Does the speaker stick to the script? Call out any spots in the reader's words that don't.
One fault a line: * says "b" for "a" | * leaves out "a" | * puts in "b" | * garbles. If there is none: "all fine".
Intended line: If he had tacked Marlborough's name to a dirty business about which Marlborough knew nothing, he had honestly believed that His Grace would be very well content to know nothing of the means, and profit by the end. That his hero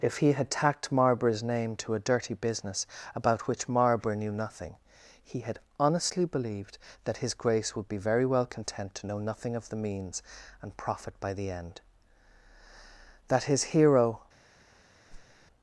all fine